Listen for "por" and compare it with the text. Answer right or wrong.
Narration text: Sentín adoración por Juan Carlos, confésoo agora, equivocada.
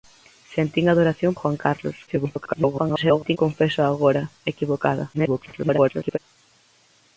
wrong